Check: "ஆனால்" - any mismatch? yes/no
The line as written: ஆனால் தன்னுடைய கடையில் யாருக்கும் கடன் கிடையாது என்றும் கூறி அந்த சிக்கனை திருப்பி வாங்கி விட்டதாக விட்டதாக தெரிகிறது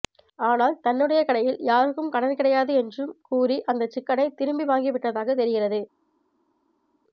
no